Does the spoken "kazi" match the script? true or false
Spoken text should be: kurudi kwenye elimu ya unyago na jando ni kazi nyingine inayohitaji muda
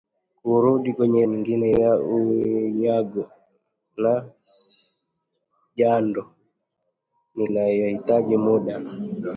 false